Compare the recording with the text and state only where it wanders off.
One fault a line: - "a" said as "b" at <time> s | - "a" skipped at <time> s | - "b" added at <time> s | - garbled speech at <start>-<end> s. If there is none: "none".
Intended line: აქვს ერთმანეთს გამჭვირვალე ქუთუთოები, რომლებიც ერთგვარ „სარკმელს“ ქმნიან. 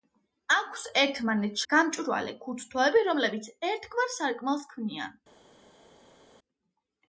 none